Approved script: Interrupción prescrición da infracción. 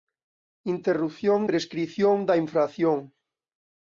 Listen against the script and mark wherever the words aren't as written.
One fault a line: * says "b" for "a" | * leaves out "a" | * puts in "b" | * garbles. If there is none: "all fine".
all fine